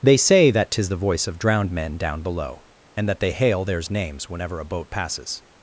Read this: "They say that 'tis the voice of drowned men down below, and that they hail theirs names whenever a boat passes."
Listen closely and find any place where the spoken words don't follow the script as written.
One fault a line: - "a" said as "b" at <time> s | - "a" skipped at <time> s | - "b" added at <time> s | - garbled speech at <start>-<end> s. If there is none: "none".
none